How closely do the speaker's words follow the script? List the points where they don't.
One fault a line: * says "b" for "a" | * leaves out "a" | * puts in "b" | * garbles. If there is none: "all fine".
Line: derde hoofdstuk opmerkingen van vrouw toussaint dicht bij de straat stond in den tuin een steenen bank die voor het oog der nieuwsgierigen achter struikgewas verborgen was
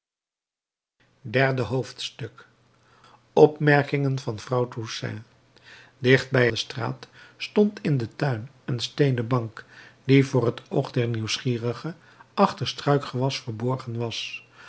all fine